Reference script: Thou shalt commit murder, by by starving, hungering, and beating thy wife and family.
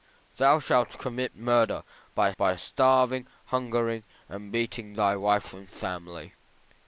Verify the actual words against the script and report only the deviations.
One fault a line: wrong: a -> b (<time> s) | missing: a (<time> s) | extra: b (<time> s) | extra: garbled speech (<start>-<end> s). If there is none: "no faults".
no faults